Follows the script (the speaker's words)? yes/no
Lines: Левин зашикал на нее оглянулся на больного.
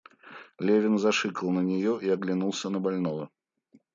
no